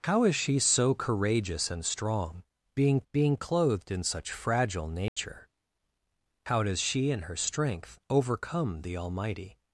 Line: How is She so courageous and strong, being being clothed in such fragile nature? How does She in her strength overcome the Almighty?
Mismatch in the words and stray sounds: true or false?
true